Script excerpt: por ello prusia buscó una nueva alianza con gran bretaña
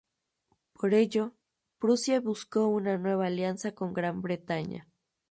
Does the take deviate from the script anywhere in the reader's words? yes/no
no